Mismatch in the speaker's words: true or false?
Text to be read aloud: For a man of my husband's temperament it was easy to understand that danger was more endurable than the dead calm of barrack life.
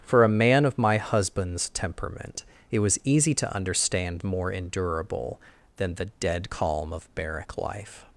true